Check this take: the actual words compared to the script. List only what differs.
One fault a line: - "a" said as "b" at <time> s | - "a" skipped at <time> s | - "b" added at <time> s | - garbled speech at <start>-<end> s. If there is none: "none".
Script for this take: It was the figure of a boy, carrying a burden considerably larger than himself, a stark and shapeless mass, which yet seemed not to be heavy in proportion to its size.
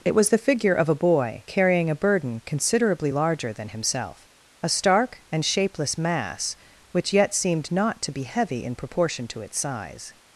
none